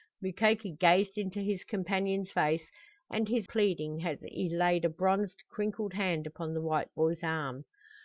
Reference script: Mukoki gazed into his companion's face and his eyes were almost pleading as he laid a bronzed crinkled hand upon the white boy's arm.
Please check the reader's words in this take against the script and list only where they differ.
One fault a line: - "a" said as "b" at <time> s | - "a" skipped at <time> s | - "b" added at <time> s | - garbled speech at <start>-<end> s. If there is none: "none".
- "eyes were almost" skipped at 3.5 s